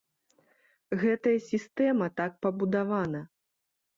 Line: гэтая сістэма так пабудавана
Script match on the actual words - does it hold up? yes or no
yes